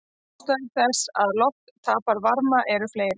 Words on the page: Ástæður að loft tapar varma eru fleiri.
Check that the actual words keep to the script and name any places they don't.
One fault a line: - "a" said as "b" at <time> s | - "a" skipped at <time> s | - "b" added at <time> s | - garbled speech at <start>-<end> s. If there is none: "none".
- "þess" added at 0.8 s